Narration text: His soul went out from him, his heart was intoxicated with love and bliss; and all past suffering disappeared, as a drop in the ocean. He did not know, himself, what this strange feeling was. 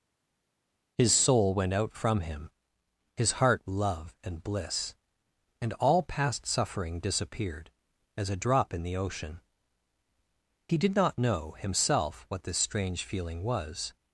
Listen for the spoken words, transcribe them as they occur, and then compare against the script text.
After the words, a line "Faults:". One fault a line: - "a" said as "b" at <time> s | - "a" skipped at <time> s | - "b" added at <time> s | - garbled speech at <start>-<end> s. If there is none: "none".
His soul went out from him, his heart love and bliss; and all past suffering disappeared, as a drop in the ocean. He did not know, himself, what this strange feeling was.
Faults:
- "was intoxicated with" skipped at 3.6 s